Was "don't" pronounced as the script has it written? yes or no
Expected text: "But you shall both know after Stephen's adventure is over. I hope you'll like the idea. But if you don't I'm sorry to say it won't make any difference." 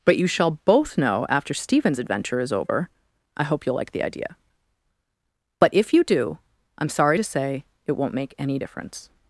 no